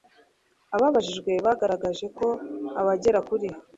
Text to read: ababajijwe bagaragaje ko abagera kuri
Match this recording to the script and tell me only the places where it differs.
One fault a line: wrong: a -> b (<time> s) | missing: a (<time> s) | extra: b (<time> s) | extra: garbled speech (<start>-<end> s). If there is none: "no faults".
no faults